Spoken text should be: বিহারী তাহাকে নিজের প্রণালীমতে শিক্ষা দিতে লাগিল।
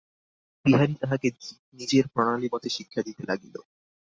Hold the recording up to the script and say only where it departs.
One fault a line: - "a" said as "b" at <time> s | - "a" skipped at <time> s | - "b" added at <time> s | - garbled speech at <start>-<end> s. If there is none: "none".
none